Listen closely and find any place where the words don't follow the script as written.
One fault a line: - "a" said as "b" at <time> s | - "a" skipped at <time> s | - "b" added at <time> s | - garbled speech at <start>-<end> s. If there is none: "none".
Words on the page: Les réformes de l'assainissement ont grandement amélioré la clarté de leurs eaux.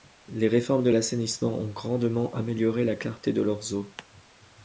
none